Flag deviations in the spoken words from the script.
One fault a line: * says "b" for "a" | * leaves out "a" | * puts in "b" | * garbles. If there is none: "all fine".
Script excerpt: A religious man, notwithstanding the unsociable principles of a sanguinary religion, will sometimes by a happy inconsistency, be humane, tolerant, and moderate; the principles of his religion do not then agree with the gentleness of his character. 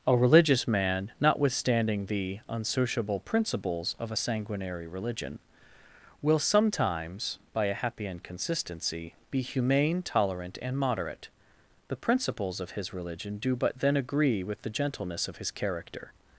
* says "but" for "not"